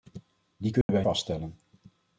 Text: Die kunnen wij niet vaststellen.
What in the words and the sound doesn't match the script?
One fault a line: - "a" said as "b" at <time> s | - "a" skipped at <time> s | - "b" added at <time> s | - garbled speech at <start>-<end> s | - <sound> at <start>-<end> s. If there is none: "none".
- dropout at 0.8-0.9 s
- "niet" skipped at 1.0 s